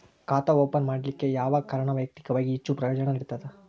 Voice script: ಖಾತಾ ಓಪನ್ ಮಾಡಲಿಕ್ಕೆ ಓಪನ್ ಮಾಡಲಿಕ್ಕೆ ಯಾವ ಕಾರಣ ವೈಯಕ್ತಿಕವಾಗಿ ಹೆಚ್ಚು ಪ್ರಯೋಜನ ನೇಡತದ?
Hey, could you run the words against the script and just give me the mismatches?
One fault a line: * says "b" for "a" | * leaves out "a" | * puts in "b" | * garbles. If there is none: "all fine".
* leaves out "ಓಪನ್ ಮಾಡಲಿಕ್ಕೆ"